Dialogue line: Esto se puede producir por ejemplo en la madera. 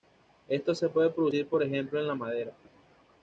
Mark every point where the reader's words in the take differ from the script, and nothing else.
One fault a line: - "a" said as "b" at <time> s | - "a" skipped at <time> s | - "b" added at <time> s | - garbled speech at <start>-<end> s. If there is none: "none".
none